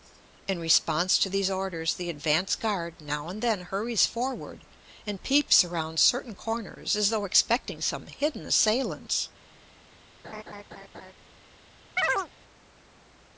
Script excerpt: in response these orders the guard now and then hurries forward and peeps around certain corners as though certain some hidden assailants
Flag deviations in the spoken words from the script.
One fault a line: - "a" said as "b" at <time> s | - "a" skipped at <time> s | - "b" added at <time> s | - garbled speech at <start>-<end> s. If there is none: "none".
- "to" added at 1.2 s
- "advance" added at 2.1 s
- "certain" said as "expecting" at 7.2 s